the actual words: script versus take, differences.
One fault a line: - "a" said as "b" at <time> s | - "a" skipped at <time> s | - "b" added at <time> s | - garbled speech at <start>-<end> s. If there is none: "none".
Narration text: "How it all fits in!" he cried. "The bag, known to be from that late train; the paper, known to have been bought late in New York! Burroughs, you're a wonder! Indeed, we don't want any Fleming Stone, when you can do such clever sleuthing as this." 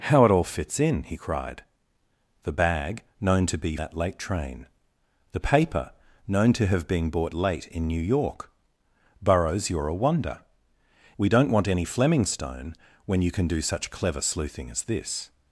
- "from" skipped at 3.8 s
- "Indeed" skipped at 10.4 s